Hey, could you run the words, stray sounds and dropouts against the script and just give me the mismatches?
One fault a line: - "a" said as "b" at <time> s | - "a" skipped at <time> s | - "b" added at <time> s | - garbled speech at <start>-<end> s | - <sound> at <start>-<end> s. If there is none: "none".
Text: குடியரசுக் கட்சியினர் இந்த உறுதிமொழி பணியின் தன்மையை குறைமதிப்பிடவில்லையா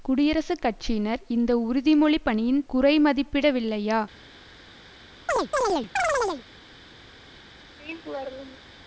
- "தன்மையை" skipped at 2.6 s
- chirp at 5.3-6.4 s
- laugh at 7.8-8.7 s